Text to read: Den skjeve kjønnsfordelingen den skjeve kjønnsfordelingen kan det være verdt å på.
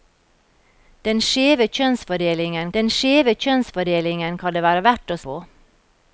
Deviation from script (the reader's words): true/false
false